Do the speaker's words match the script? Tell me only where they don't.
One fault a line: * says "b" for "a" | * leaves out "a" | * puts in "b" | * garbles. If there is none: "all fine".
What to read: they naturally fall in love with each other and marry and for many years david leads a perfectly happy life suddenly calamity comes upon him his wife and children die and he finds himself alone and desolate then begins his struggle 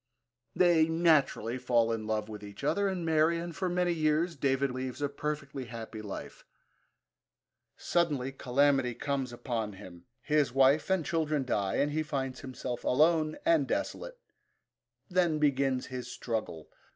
all fine